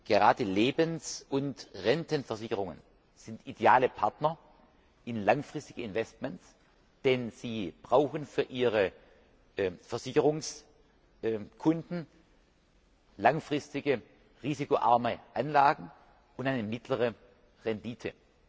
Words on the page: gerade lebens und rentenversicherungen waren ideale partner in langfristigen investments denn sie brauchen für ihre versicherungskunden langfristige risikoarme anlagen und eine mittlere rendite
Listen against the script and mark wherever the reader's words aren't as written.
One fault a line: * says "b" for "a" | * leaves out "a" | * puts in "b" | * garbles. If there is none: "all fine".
* says "sind" for "waren"